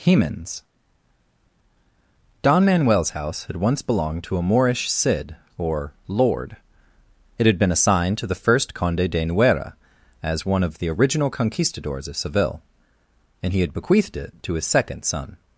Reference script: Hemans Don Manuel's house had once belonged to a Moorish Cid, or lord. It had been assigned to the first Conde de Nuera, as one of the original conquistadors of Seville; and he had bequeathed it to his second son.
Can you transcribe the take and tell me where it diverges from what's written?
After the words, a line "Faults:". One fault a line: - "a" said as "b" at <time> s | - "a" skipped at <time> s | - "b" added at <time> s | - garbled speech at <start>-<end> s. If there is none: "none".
Hemans Don Manuel's house had once belonged to a Moorish Cid, or lord. It had been assigned to the first Conde de Nuera, as one of the original conquistadors of Seville; and he had bequeathed it to his second son.
Faults:
none